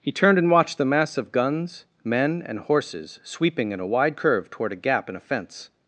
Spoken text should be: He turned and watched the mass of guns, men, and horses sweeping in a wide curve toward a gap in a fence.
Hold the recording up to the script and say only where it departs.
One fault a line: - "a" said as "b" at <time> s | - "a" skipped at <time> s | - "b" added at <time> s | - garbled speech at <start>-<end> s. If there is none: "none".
none